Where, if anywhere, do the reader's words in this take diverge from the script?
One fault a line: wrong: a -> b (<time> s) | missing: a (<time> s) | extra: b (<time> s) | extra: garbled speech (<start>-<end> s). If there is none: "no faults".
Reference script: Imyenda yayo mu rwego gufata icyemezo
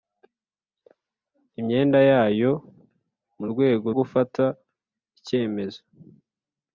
no faults